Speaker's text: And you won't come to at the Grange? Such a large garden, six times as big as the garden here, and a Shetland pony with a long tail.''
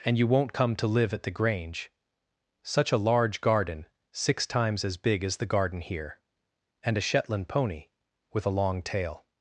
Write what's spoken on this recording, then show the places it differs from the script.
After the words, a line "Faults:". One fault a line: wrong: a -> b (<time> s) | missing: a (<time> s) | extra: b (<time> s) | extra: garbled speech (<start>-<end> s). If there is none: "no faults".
And you won't come to live at the Grange? Such a large garden, six times as big as the garden here, and a Shetland pony with a long tail.''
Faults:
extra: live (0.9 s)